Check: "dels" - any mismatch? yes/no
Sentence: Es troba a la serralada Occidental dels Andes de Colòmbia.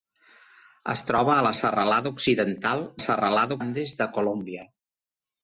yes